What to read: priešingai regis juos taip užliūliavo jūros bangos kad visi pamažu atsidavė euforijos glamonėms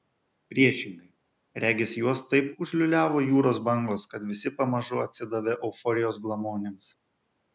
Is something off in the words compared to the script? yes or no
no